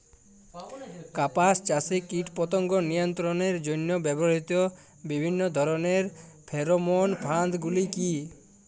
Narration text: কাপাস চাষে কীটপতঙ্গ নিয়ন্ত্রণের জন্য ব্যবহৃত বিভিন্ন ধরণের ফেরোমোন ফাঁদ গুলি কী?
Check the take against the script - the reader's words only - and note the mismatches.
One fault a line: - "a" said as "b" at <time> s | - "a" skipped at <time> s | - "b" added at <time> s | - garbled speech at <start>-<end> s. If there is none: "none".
none